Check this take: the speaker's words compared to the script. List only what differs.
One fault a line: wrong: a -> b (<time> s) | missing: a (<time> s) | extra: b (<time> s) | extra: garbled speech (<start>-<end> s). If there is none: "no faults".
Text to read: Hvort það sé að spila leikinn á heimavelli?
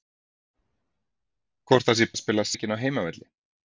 no faults